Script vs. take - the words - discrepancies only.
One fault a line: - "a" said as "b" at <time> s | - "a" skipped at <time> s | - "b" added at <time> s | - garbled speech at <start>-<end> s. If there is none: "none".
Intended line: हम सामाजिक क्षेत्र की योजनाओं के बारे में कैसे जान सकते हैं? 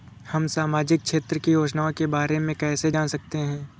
none